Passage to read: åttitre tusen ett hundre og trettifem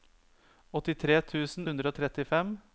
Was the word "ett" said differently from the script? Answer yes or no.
yes